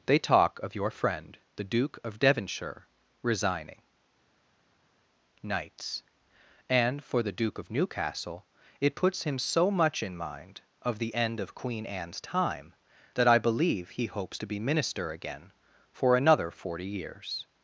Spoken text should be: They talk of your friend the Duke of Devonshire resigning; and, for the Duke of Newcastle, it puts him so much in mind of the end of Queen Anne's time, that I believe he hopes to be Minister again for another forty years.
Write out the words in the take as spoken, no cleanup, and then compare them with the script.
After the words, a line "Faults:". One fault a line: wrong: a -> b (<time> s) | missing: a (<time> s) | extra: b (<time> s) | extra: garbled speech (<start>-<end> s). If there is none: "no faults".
They talk of your friend the Duke of Devonshire resigning; knights and, for the Duke of Newcastle, it puts him so much in mind of the end of Queen Anne's time, that I believe he hopes to be Minister again for another forty years.
Faults:
extra: knights (5.4 s)